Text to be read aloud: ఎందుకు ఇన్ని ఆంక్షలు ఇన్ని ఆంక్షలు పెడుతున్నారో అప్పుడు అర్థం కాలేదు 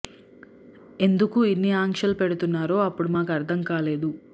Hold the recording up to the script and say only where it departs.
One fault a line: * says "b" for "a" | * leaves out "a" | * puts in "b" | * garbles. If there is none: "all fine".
* leaves out "ఇన్ని ఆంక్షలు"
* puts in "మాకు"